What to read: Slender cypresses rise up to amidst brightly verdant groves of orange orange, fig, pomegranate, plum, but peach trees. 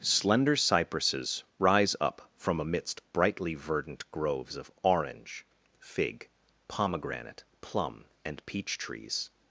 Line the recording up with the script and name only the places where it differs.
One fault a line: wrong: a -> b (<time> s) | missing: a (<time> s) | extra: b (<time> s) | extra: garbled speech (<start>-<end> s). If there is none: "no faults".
wrong: to -> from (2.4 s)
missing: orange (5.5 s)
wrong: but -> and (8.2 s)